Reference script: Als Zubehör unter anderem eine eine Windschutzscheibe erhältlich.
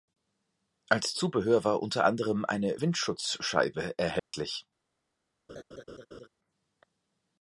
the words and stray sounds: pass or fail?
fail